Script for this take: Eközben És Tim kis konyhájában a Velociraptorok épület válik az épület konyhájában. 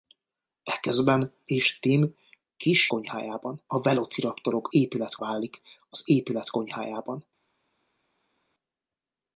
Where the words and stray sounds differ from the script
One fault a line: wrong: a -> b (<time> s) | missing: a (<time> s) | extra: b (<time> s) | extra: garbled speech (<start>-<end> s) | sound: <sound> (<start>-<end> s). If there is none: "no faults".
no faults